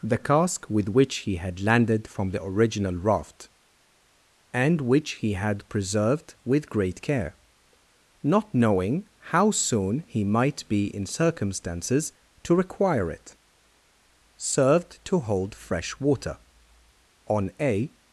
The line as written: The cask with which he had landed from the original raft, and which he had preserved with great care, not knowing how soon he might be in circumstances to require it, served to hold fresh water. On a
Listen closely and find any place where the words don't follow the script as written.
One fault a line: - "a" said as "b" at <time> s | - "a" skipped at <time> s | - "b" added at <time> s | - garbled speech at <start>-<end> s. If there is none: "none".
none